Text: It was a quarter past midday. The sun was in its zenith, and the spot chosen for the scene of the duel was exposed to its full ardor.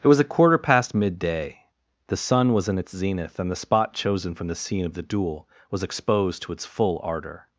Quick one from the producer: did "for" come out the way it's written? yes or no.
no